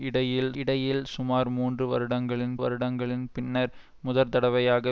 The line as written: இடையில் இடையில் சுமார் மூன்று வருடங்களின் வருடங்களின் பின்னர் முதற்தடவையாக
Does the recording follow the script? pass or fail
pass